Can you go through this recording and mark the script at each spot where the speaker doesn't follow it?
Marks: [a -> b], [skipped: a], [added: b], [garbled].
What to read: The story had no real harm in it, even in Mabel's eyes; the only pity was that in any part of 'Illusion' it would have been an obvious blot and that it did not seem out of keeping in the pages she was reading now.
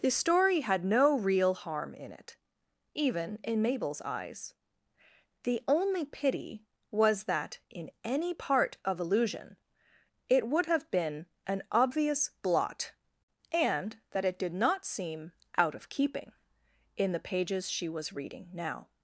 The story had no real harm in it, even in Mabel's eyes; the only pity was that in any part of 'Illusion' it would have been an obvious blot and that it did not seem out of keeping in the pages she was reading now.